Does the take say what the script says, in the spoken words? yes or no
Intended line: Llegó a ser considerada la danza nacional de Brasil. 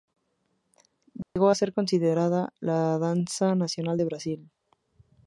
yes